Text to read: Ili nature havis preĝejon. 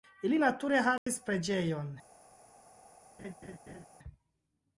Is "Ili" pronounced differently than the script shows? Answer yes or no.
no